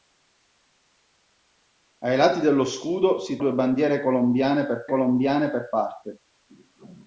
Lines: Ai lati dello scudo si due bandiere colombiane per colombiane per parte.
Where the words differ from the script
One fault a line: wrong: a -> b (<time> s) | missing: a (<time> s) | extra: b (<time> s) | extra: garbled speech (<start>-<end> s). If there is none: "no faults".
no faults